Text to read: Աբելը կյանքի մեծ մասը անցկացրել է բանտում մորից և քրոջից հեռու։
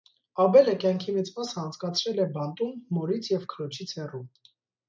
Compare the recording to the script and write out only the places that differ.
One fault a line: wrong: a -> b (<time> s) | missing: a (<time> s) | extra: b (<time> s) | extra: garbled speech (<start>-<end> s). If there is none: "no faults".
no faults